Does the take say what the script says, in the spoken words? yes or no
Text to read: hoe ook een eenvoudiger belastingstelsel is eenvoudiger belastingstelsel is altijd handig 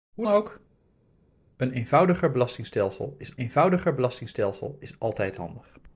yes